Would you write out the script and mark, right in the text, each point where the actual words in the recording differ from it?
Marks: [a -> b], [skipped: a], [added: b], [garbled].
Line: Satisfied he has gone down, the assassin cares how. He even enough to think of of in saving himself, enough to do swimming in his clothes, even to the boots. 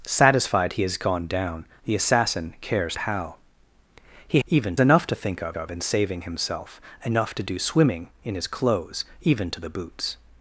Satisfied he has gone down, the assassin cares how. He even enough to think of of in saving himself, enough to do swimming in his clothes, even to the boots.